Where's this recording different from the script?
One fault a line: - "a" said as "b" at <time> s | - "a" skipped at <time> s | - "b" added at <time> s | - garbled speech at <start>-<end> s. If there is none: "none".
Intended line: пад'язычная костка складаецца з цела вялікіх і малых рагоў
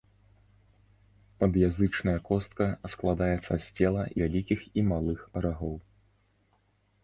none